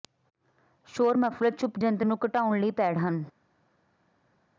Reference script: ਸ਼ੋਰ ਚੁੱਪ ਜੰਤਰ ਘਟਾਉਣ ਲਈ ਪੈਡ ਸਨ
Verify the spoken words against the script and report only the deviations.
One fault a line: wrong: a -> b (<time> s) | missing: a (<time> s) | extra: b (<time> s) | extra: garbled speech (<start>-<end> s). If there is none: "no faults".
extra: ਮਫਲਰ (1.2 s)
extra: ਨੂੰ (2.0 s)
wrong: ਸਨ -> ਹਨ (3.0 s)